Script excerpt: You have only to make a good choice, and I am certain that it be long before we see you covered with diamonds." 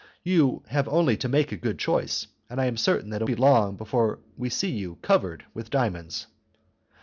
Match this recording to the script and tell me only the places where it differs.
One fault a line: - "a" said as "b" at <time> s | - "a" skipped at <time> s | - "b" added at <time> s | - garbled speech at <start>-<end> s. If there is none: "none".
none